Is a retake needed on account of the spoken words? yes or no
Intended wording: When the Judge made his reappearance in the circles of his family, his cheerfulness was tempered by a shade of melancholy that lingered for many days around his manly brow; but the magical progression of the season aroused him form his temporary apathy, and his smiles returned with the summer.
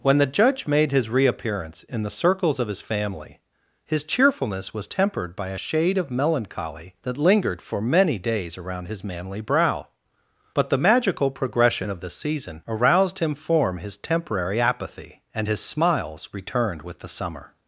no